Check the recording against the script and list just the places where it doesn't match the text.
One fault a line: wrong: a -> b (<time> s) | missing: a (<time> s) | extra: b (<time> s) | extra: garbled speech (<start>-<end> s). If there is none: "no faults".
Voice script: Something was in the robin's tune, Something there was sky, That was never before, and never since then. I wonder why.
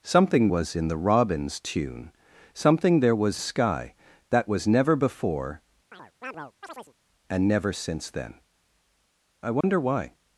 no faults